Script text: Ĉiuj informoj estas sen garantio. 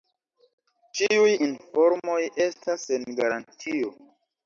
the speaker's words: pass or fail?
pass